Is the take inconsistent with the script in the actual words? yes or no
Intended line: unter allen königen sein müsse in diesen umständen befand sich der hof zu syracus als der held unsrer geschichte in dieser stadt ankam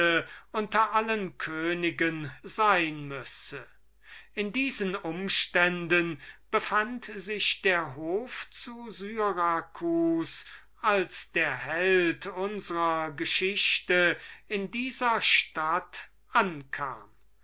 no